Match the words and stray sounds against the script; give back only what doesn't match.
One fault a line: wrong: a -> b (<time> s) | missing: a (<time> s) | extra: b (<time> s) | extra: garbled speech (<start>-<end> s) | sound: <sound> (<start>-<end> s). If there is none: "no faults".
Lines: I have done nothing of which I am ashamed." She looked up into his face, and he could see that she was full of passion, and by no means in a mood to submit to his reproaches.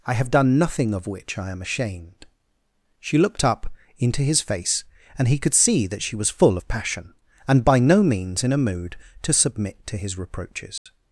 sound: dropout (10.8-10.9 s)